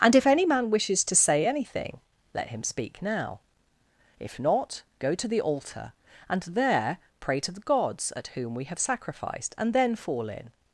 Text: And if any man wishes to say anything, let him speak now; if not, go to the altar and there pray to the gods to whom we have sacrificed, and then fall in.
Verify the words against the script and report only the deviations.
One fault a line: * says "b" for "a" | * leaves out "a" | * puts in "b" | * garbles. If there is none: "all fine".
* says "at" for "to"